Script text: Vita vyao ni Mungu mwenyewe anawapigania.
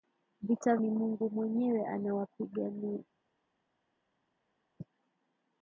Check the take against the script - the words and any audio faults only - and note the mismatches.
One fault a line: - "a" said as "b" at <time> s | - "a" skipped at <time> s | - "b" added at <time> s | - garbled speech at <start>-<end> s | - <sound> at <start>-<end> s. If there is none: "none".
- "vyao" skipped at 0.8 s